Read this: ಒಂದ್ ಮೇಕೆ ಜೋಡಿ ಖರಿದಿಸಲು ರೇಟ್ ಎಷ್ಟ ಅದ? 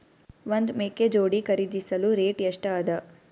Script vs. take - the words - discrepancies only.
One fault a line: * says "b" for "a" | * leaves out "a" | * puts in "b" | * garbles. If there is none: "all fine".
all fine